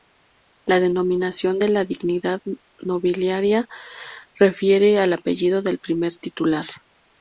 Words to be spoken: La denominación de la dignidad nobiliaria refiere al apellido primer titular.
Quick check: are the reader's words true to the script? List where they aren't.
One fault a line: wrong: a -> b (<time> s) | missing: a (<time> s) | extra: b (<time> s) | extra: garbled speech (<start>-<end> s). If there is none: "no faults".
extra: del (5.6 s)